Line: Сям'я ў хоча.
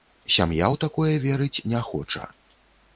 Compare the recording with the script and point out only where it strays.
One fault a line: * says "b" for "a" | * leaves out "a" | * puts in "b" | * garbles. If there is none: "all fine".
* puts in "такое верыць не"